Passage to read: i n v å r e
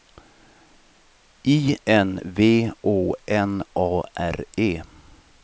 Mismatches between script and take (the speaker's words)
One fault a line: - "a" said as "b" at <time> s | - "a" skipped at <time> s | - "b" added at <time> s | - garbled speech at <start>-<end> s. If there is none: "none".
- "n a" added at 3.3 s